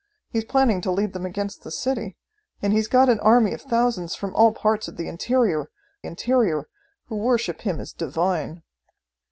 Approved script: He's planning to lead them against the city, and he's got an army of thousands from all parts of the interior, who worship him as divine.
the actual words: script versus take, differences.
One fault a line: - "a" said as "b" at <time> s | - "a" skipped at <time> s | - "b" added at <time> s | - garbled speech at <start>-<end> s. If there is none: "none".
- "interior" added at 6.1 s